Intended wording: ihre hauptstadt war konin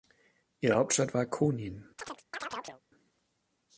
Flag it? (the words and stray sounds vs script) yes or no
yes